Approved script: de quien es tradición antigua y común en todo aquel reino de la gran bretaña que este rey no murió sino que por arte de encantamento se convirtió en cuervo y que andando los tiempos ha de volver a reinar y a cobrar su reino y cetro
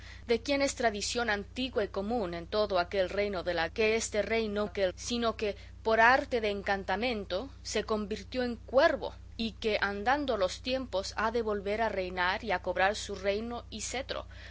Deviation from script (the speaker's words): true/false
true